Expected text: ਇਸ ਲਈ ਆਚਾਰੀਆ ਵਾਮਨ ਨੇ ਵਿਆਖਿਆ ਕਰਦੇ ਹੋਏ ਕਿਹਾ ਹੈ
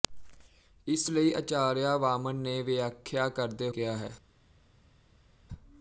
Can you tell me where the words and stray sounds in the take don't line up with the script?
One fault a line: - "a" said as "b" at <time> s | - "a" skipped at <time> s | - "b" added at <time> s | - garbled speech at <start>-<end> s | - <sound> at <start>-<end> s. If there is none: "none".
- "ਹੋਏ" skipped at 3.7 s